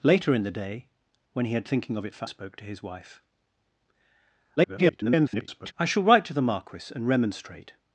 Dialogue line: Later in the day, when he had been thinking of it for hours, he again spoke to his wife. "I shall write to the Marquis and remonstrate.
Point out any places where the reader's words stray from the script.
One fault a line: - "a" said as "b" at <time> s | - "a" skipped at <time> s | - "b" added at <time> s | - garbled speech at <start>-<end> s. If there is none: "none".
- "been" skipped at 1.6 s
- "hours he again" skipped at 2.3 s
- garbled speech at 4.6-5.7 s